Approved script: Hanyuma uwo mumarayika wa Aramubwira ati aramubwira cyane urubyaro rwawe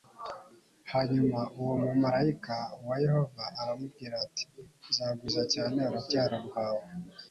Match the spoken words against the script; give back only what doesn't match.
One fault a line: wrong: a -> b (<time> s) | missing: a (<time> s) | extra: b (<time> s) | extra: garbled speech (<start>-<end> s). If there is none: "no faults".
extra: Yehova (3.0 s)
wrong: aramubwira -> nzagwiza (4.9 s)